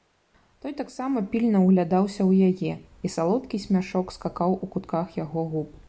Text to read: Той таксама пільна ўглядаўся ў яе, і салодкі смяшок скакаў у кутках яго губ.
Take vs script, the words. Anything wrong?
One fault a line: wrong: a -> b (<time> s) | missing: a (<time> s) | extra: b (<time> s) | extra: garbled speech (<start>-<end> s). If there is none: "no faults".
no faults